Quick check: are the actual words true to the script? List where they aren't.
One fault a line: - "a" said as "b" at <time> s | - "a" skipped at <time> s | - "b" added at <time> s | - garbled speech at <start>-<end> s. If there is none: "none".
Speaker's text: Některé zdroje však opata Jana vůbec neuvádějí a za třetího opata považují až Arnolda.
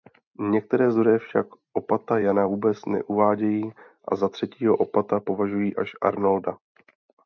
none